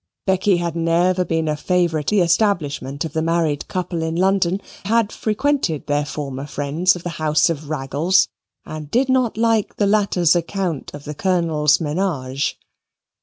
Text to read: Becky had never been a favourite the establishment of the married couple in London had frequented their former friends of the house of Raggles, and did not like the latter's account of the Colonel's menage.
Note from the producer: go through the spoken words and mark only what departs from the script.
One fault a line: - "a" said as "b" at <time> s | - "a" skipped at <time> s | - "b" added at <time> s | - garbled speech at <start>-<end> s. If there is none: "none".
none